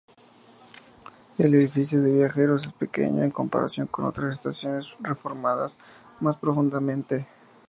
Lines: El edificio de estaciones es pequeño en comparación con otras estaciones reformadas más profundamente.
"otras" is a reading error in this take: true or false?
false